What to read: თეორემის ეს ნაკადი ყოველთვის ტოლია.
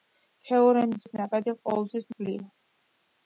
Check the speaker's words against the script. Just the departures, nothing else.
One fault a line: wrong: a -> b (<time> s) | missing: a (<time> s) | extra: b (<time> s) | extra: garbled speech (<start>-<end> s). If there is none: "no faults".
no faults